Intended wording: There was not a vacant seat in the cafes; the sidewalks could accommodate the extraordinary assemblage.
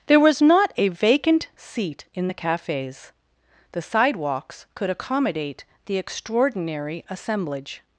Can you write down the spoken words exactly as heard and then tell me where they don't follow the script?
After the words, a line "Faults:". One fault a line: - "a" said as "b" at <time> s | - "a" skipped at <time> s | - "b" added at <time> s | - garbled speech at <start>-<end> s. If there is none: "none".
There was not a vacant seat in the cafes; the sidewalks could accommodate the extraordinary assemblage.
Faults:
none